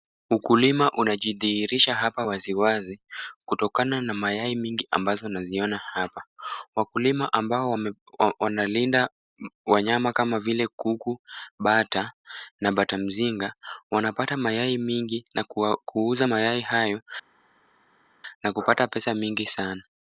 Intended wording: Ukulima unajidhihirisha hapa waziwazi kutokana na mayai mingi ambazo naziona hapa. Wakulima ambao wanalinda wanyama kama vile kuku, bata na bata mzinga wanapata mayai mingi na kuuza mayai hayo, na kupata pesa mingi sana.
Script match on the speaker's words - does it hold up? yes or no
yes